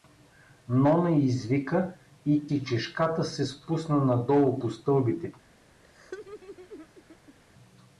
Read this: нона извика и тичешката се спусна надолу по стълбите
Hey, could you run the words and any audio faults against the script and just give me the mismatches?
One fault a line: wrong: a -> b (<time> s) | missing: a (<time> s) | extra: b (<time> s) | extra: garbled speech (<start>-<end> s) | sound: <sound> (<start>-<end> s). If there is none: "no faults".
sound: laugh (5.8-7.4 s)